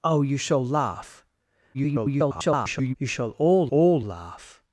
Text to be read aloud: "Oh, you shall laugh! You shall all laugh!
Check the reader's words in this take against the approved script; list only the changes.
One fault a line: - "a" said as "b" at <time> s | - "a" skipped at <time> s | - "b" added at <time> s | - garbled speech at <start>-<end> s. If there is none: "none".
- garbled speech at 1.7-2.9 s
- "all" added at 3.7 s